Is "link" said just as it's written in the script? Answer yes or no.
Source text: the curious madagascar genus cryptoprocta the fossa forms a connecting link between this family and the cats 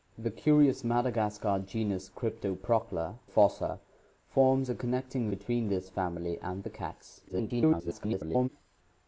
no